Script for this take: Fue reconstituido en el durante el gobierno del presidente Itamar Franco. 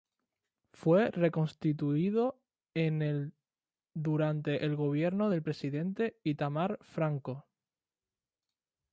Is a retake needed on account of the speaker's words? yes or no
no